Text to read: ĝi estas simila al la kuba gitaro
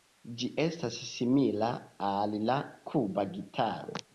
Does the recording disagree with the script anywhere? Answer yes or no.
no